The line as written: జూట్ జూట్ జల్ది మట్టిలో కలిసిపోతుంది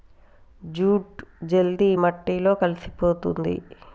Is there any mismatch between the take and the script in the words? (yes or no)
yes